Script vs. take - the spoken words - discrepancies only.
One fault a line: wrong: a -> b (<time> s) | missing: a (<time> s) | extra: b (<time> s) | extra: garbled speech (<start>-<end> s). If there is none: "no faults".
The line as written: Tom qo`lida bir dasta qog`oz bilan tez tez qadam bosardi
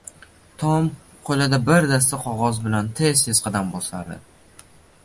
no faults